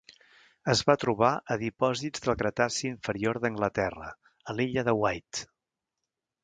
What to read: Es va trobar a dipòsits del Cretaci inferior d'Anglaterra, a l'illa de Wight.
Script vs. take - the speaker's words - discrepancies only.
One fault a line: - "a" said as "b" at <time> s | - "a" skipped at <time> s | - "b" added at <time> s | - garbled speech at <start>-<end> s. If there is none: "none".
none